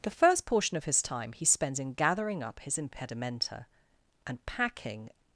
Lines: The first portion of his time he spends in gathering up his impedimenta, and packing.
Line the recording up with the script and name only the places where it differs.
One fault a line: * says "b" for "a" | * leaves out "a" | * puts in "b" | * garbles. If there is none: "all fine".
all fine